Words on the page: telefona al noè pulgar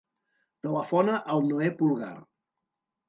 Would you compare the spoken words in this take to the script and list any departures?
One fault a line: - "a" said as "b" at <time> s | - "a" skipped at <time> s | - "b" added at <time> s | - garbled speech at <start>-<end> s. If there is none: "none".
none